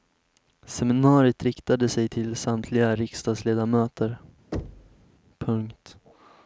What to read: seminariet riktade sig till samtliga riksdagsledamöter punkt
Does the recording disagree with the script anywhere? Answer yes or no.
no